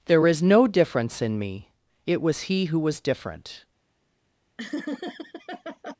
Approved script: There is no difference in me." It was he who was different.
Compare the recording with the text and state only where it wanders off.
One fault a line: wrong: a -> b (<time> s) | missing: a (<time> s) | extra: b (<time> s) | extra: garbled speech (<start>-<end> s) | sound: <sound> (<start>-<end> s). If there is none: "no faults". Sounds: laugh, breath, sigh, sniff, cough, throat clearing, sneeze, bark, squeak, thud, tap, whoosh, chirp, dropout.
sound: laugh (4.6-6.0 s)